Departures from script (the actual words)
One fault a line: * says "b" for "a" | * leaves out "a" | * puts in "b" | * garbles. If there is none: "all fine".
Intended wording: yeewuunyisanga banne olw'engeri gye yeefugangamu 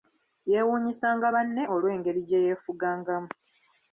all fine